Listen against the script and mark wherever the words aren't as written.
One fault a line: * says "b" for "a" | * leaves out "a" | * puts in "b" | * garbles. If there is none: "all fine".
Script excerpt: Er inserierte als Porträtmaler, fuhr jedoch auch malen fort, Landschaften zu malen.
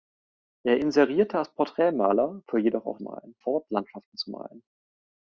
all fine